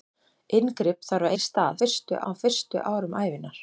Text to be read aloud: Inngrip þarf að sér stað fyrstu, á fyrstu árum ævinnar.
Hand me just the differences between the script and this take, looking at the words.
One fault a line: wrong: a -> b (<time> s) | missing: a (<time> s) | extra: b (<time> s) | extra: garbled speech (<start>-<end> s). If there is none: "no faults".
no faults